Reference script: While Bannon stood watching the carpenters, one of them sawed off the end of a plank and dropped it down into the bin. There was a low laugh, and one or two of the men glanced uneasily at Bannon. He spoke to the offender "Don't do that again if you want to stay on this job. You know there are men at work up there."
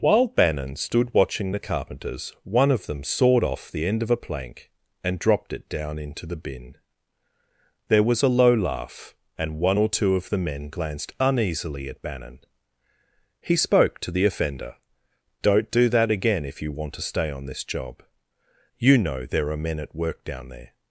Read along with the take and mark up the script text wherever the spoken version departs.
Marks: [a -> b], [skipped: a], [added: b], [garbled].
While Bannon stood watching the carpenters, one of them sawed off the end of a plank and dropped it down into the bin. There was a low laugh, and one or two of the men glanced uneasily at Bannon. He spoke to the offender "Don't do that again if you want to stay on this job. You know there are men at work [up -> down] there."